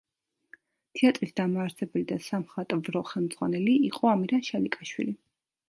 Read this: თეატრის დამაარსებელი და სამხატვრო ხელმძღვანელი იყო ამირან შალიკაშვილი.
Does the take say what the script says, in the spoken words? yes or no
yes